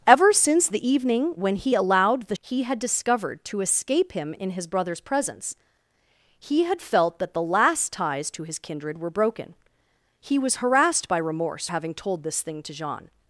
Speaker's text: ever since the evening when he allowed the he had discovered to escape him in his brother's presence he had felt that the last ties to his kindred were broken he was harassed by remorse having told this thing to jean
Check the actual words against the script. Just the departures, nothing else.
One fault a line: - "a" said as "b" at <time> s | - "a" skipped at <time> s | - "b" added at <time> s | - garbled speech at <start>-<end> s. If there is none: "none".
none